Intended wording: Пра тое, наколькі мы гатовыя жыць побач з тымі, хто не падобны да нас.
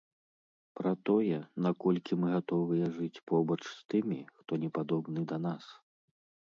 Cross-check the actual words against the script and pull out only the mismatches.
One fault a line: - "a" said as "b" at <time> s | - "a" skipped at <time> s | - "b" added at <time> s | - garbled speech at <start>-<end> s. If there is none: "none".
none